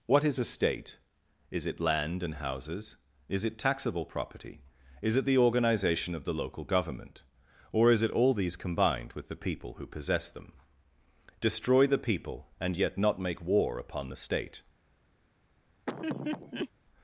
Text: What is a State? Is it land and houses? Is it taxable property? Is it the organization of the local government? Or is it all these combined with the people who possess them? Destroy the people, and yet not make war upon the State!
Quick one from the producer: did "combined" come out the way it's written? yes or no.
yes